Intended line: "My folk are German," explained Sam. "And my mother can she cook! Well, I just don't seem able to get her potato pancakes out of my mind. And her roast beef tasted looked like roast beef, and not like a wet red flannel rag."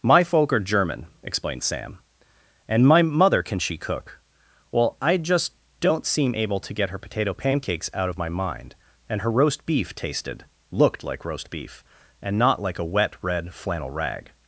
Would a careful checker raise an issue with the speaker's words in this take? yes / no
no